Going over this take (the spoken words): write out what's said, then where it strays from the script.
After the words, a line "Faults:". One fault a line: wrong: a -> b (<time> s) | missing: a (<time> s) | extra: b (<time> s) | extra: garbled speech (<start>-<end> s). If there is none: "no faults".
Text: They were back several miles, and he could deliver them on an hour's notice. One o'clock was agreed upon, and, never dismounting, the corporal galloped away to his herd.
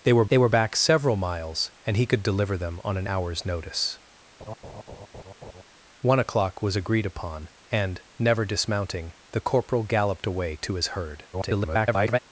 They were they were back several miles, and he could deliver them on an hour's notice. One o'clock was agreed upon, and, never dismounting, the corporal galloped away to his herd. [garbled]
Faults:
extra: they were (0.3 s)
extra: garbled speech (11.3-12.2 s)